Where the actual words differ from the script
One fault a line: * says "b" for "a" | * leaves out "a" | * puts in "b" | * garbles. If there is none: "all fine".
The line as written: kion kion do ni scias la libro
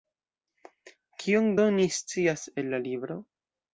* leaves out "kion"
* puts in "el"